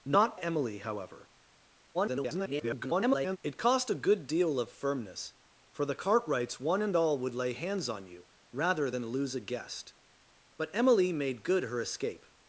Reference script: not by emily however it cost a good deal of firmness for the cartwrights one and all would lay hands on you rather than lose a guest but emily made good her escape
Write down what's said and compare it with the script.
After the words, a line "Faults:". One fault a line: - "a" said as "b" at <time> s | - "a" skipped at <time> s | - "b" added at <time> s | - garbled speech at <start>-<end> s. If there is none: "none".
not emily however [garbled] it cost a good deal of firmness for the cartwrights one and all would lay hands on you rather than lose a guest but emily made good her escape
Faults:
- "by" skipped at 0.4 s
- garbled speech at 1.9-3.4 s